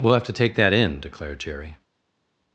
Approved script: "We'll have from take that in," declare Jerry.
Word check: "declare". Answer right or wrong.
wrong